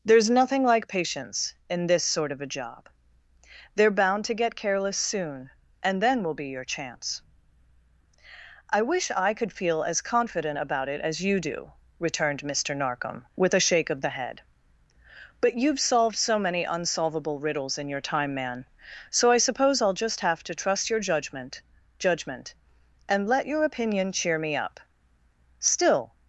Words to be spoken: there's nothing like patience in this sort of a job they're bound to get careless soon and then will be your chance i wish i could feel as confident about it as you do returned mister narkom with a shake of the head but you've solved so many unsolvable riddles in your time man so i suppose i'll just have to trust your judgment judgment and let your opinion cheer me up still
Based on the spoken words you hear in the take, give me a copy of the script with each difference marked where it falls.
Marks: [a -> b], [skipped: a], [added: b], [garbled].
there's nothing like patience in this sort of a job they're bound to get careless soon and then will be your chance i wish i could feel as confident about it as you do returned mister narkom with a shake of the head but you've solved so many unsolvable riddles in your time man so i suppose i'll just have to trust your judgment judgment and let your opinion cheer me up still